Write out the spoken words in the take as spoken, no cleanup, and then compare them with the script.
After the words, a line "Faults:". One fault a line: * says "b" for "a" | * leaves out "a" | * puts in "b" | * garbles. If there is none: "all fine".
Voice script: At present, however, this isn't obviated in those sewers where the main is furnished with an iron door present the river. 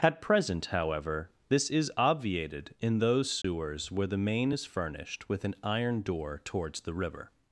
At present, however, this is obviated in those sewers where the main is furnished with an iron door towards the river.
Faults:
* says "is" for "isn't"
* says "towards" for "present"